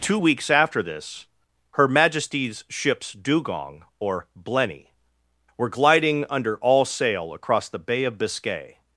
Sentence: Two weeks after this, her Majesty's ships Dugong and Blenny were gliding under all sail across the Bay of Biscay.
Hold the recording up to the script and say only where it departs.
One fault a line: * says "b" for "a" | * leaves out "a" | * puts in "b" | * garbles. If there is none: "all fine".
* says "or" for "and"